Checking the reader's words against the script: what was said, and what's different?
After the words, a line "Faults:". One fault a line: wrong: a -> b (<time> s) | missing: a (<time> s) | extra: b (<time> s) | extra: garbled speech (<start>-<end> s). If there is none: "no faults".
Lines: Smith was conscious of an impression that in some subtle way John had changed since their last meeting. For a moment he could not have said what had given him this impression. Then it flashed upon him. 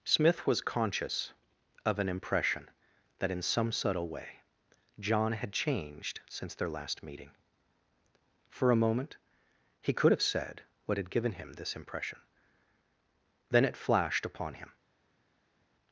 Smith was conscious of an impression that in some subtle way John had changed since their last meeting. For a moment he could have said what had given him this impression. Then it flashed upon him.
Faults:
missing: not (10.1 s)